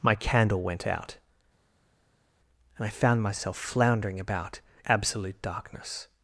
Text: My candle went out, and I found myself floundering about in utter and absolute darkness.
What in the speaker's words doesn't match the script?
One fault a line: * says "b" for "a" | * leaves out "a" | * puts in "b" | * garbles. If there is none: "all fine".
* leaves out "in utter and"